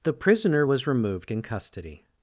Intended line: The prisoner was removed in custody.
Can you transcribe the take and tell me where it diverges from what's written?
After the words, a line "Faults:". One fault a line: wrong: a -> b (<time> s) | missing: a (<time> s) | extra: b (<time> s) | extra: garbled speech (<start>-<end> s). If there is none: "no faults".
The prisoner was removed in custody.
Faults:
no faults